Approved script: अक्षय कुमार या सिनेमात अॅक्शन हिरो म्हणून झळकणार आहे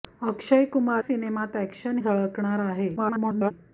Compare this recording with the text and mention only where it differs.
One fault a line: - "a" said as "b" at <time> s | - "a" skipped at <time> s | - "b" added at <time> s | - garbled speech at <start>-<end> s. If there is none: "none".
- "या" skipped at 1.0 s
- "हिरो म्हणून" skipped at 2.0 s
- garbled speech at 3.0-3.5 s